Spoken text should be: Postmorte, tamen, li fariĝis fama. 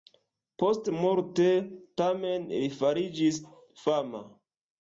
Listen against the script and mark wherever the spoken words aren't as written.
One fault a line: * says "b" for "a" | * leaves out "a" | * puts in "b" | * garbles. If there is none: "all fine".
all fine